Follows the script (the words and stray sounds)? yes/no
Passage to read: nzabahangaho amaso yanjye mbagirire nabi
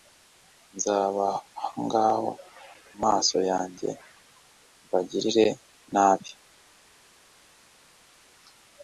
yes